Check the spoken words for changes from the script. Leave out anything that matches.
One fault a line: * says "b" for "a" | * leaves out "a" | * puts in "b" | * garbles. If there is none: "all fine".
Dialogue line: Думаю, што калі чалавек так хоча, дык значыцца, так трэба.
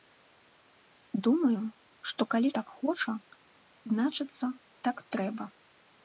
* leaves out "чалавек"
* leaves out "дык"